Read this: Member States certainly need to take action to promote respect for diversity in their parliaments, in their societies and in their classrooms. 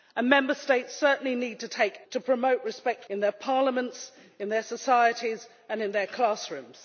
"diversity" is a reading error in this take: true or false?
true